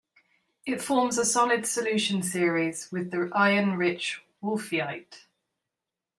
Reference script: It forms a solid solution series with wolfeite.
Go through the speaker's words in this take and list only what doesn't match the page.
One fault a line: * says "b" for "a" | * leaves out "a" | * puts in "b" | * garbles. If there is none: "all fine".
* puts in "the iron rich"